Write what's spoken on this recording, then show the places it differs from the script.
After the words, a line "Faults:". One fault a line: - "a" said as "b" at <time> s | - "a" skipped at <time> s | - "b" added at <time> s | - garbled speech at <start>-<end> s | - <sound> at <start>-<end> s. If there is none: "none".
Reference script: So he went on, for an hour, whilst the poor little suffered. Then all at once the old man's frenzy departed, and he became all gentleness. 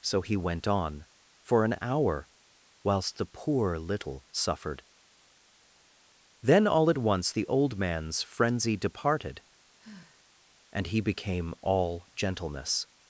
So he went on, for an hour, whilst the poor little suffered. Then all at once the old man's frenzy departed, and he became all gentleness.
Faults:
- sigh at 9.8-10.3 s